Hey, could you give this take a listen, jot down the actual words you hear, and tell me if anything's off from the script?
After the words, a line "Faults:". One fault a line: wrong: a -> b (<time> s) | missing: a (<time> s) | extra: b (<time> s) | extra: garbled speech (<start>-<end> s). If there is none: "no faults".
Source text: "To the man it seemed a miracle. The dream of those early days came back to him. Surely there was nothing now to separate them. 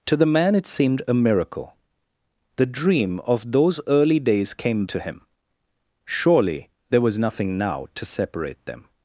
"To the man it seemed a miracle. The dream of those early days came to him. Surely there was nothing now to separate them.
Faults:
missing: back (4.8 s)